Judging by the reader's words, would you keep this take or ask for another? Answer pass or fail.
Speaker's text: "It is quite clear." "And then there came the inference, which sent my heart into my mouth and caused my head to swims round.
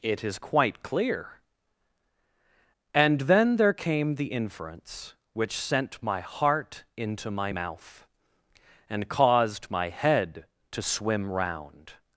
fail